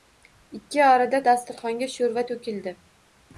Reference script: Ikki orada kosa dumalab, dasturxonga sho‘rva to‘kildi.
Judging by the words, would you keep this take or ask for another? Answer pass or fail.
fail